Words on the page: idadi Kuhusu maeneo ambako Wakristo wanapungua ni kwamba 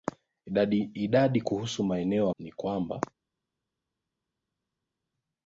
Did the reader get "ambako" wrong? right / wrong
wrong